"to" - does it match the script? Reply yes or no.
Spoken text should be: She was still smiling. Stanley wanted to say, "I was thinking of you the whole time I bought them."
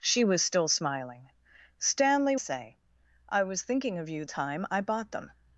no